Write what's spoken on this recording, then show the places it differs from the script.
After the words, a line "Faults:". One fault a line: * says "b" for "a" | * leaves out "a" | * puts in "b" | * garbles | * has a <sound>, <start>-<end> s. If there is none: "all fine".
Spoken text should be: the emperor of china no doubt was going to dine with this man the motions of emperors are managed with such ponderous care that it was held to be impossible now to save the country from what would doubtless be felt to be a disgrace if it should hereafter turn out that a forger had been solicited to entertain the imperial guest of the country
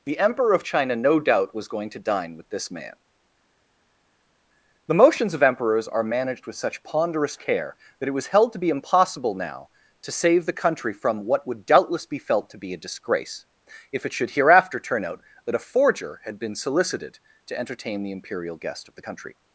the emperor of china no doubt was going to dine with this man the motions of emperors are managed with such ponderous care that it was held to be impossible now to save the country from what would doubtless be felt to be a disgrace if it should hereafter turn out that a forger had been solicited to entertain the imperial guest of the country
Faults:
all fine